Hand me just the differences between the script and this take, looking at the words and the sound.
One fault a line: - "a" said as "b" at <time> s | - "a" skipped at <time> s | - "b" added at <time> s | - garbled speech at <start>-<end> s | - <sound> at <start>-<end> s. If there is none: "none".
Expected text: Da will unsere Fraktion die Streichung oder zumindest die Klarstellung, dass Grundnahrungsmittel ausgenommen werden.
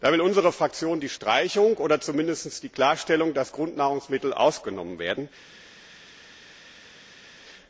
none